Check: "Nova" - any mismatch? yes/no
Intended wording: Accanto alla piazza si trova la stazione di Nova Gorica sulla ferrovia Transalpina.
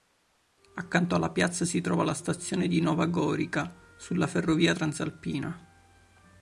no